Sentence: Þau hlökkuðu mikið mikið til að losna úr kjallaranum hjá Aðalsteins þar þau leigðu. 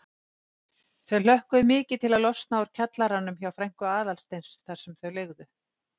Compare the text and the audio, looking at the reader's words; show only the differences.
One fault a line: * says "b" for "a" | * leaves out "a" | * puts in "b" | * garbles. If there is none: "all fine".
* leaves out "mikið"
* puts in "frænku"
* puts in "sem"